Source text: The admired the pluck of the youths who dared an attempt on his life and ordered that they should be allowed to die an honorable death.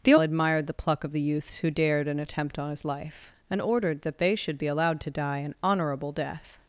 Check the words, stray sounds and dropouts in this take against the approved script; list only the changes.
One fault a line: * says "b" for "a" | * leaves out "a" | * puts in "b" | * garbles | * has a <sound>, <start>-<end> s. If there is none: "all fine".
all fine